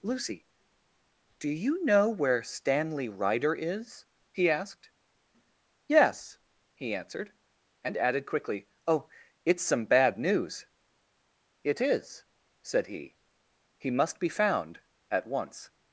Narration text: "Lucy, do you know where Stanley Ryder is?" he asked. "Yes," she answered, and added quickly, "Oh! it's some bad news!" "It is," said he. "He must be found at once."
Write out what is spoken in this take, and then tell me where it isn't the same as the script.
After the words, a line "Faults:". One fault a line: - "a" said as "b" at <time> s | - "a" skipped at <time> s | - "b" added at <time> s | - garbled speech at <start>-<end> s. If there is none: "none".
"Lucy, do you know where Stanley Ryder is?" he asked. "Yes," he answered, and added quickly, "Oh! it's some bad news!" "It is," said he. "He must be found at once."
Faults:
- "she" said as "he" at 6.7 s